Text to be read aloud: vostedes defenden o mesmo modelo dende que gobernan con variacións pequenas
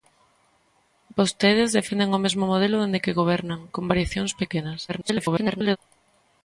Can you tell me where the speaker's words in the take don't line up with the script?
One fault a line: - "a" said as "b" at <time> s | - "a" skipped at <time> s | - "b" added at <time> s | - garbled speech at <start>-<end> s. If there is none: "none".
- garbled speech at 4.9-5.8 s